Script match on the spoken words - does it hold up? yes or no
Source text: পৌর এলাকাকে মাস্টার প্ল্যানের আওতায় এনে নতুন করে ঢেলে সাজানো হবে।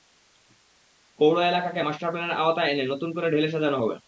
yes